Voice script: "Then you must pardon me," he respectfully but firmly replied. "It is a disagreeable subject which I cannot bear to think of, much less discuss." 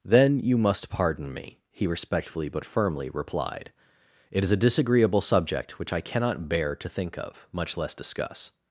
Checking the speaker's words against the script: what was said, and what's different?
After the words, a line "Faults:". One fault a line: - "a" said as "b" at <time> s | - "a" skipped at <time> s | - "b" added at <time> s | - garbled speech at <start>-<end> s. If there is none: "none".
"Then you must pardon me," he respectfully but firmly replied. "It is a disagreeable subject which I cannot bear to think of, much less discuss."
Faults:
none